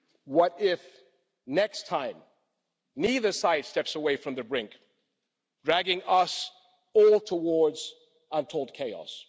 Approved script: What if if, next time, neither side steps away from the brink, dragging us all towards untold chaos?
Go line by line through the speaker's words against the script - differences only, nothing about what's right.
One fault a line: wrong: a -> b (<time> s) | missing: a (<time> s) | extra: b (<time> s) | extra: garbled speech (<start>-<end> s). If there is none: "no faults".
missing: if (0.8 s)